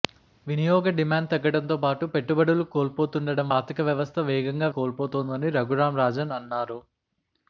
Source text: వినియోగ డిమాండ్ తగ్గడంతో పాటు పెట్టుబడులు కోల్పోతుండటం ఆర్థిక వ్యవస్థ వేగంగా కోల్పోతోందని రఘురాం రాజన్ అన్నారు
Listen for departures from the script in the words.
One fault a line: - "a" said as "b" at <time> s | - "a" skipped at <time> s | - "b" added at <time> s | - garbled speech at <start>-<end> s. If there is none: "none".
none